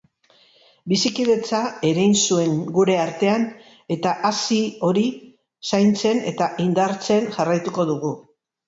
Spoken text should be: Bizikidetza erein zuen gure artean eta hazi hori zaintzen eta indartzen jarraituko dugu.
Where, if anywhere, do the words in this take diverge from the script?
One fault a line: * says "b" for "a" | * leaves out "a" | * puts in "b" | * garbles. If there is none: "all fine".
all fine